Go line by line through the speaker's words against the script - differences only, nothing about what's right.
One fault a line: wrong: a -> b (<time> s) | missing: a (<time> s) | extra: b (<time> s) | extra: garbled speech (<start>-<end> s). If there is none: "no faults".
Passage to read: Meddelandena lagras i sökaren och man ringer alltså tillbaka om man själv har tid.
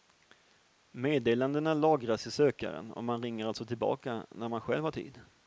wrong: om -> när (4.3 s)